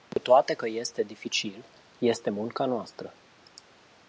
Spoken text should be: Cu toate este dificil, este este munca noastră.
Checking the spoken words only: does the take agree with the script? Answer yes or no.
no